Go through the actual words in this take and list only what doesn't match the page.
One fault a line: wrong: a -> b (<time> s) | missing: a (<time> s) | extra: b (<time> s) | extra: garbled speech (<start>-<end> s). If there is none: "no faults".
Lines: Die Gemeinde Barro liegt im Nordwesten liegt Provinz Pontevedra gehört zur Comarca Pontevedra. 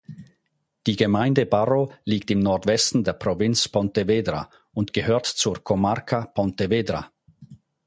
wrong: liegt -> der (3.0 s)
extra: und (4.7 s)